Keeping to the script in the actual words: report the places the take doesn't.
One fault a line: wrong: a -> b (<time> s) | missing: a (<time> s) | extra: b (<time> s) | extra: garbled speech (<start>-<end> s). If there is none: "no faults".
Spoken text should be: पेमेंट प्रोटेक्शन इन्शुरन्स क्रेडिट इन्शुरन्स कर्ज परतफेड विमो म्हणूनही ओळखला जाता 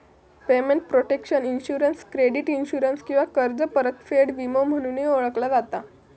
extra: किंवा (3.0 s)